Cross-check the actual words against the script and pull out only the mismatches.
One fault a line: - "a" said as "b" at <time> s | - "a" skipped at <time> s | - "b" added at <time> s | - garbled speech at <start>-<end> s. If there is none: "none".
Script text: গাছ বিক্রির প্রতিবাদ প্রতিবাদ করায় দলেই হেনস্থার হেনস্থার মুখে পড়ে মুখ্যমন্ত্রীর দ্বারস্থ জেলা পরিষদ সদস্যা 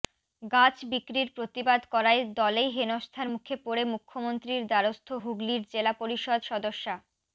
- "প্রতিবাদ" skipped at 1.8 s
- "হেনস্থার" skipped at 3.3 s
- "হুগলির" added at 5.2 s